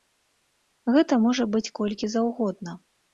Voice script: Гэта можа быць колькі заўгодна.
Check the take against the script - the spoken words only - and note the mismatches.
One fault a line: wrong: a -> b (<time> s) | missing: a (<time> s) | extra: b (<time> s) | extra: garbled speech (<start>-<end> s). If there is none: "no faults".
no faults